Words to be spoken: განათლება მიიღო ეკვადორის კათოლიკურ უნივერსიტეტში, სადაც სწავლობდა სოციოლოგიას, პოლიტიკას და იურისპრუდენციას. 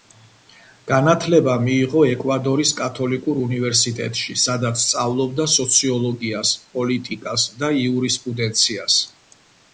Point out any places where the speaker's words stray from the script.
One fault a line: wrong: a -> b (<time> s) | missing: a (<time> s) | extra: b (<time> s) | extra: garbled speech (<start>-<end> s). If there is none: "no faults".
no faults